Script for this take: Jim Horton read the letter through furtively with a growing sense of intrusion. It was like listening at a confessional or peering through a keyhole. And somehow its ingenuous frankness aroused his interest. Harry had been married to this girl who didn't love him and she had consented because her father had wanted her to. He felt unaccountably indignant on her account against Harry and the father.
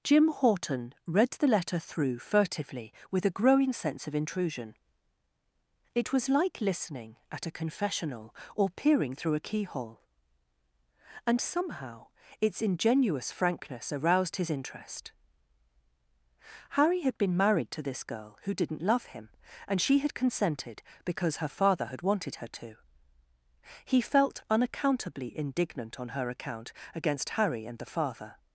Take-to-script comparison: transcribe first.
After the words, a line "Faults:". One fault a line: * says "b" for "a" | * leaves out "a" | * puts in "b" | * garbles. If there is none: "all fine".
Jim Horton read the letter through furtively with a growing sense of intrusion. It was like listening at a confessional or peering through a keyhole. And somehow its ingenuous frankness aroused his interest. Harry had been married to this girl who didn't love him and she had consented because her father had wanted her to. He felt unaccountably indignant on her account against Harry and the father.
Faults:
all fine